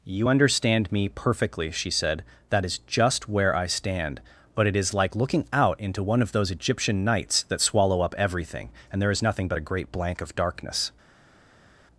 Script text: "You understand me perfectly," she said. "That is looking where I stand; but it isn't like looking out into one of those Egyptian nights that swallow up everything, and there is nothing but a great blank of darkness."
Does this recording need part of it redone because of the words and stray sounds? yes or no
yes